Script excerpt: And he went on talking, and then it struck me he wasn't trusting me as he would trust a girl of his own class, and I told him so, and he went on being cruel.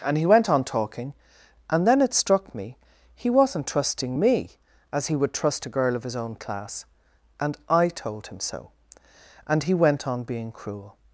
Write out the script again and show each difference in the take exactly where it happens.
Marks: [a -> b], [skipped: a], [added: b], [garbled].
And he went on talking, and then it struck me he wasn't trusting me as he would trust a girl of his own class, and I told him so, and he went on being cruel.